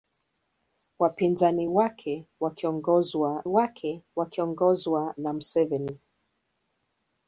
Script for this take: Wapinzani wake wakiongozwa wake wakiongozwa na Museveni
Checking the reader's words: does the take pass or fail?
pass